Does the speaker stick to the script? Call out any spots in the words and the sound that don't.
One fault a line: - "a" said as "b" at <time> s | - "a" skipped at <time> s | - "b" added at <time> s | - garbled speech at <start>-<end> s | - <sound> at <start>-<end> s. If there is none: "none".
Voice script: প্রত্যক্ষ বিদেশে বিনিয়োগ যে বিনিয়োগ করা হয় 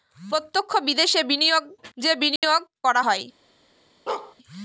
- dropout at 2.4-2.4 s
- bark at 4.1-4.4 s